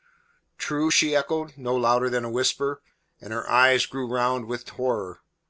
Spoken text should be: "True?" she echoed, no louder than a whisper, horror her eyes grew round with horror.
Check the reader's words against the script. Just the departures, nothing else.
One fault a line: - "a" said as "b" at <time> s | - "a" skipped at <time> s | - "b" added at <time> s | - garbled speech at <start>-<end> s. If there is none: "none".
- "horror" said as "and" at 3.2 s